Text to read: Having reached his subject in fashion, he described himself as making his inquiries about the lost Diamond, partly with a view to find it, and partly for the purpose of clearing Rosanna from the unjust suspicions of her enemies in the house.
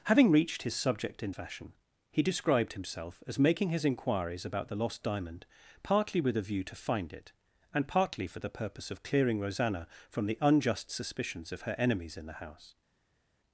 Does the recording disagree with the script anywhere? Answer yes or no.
no